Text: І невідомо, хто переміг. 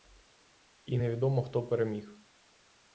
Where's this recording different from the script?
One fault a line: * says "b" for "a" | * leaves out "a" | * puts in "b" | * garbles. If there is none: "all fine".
all fine